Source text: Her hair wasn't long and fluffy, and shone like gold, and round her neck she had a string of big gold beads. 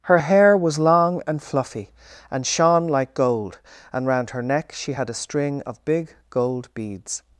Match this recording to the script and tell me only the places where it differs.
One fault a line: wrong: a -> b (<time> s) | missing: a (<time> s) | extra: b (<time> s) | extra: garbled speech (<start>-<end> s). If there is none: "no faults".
wrong: wasn't -> was (0.6 s)